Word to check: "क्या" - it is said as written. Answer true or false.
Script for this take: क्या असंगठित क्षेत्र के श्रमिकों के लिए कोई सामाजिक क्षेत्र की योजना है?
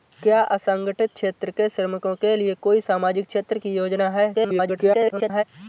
true